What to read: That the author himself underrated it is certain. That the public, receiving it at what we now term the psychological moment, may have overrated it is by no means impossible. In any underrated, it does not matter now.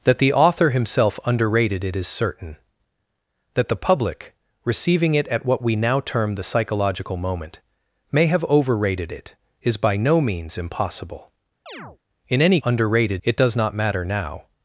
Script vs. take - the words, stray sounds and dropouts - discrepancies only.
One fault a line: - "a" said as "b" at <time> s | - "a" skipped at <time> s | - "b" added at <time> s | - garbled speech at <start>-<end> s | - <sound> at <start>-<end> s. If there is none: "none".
- chirp at 11.7-12.0 s